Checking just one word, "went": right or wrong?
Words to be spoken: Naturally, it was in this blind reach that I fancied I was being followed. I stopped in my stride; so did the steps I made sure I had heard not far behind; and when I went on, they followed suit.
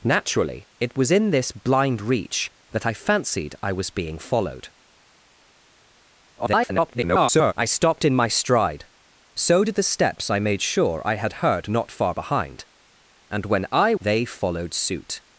wrong